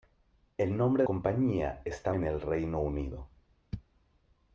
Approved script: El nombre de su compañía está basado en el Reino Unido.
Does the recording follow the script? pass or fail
fail